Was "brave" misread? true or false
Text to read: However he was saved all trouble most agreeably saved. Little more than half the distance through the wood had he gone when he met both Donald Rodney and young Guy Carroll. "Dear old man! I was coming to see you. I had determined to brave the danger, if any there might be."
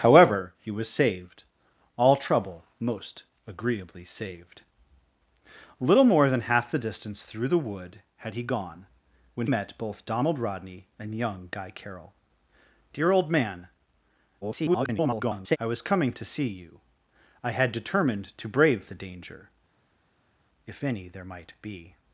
false